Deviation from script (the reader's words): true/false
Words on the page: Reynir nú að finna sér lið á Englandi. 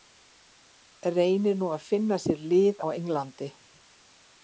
false